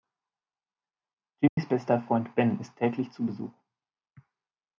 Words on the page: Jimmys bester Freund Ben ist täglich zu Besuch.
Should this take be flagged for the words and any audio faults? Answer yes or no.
yes